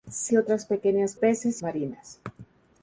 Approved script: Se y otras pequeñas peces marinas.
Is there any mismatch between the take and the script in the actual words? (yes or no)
no